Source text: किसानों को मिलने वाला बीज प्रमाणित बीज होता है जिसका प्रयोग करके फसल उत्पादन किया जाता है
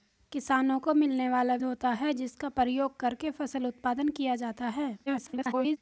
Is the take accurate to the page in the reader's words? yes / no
no